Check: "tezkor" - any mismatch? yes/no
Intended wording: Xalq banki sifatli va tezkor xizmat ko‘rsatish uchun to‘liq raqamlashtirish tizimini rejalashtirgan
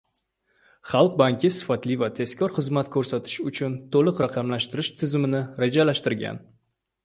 no